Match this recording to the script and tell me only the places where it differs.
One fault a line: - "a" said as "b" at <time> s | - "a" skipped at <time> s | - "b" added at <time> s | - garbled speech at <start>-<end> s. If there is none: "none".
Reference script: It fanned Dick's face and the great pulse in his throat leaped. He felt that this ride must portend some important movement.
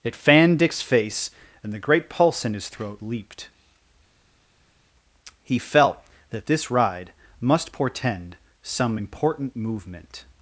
none